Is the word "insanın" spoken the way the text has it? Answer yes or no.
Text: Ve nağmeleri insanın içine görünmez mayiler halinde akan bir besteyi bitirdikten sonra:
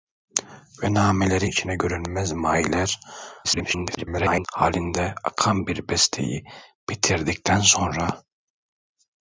no